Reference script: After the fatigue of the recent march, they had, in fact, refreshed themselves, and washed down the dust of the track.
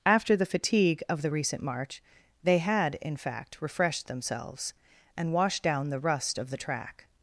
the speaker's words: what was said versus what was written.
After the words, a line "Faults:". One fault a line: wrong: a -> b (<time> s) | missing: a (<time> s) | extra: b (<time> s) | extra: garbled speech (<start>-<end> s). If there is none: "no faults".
After the fatigue of the recent march, they had, in fact, refreshed themselves, and washed down the rust of the track.
Faults:
wrong: dust -> rust (6.0 s)